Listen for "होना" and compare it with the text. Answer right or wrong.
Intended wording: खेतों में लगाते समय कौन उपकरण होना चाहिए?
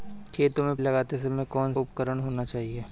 right